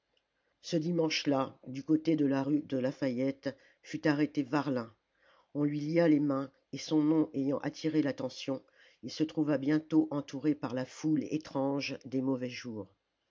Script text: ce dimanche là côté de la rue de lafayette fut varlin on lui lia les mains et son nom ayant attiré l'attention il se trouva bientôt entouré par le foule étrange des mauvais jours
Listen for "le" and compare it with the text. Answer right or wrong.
wrong